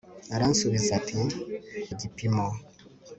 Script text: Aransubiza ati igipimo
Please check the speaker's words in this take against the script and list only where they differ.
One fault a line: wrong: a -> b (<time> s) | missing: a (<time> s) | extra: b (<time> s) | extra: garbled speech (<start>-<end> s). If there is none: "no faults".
no faults